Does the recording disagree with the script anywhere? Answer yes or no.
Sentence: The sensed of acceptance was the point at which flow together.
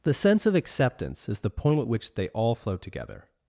yes